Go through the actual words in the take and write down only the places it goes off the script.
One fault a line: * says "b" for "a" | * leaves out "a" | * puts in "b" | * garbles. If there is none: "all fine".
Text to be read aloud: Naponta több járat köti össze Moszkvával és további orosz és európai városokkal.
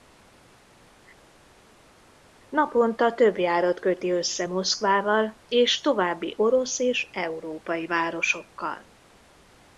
all fine